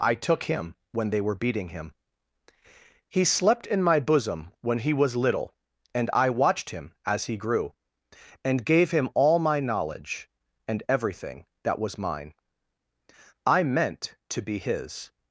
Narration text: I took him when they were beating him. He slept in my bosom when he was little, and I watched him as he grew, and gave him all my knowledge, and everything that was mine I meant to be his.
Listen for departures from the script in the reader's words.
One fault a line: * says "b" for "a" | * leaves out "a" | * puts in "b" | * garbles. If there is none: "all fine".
all fine